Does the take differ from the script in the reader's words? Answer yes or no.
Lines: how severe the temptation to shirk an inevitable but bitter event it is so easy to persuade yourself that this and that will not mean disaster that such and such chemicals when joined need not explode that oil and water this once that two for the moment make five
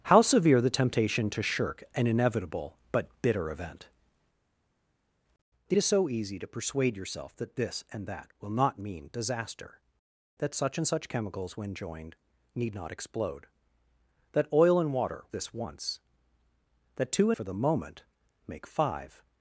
no